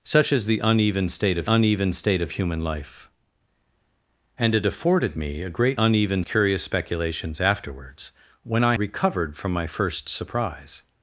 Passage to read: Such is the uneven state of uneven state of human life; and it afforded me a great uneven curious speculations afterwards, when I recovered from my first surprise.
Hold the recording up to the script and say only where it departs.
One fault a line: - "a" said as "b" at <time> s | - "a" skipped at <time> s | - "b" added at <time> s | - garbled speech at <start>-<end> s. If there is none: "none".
none